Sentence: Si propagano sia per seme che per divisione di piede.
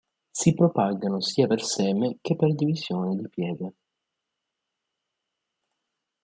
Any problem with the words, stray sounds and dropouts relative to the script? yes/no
no